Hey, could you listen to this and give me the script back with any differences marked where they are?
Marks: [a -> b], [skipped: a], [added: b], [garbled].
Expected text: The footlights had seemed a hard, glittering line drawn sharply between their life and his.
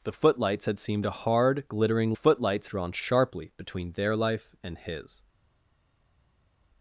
The footlights had seemed a hard, glittering [line -> footlights] drawn sharply between their life and his.